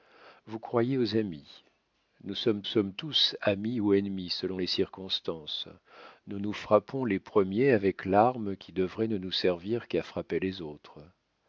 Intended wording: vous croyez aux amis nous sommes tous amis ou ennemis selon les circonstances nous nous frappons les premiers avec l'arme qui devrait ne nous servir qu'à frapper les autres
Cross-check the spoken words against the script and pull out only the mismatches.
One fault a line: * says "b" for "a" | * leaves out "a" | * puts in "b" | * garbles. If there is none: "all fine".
* puts in "sommes"